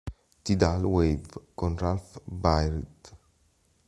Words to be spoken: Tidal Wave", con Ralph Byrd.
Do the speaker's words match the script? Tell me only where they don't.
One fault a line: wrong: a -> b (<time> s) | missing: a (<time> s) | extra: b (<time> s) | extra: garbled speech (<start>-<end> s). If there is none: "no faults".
no faults